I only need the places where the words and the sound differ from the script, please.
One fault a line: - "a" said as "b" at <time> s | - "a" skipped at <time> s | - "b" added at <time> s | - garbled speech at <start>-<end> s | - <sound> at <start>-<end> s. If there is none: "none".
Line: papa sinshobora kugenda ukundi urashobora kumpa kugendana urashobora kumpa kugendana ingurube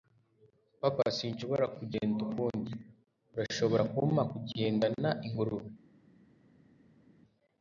- "urashobora kumpa kugendana" skipped at 5.1 s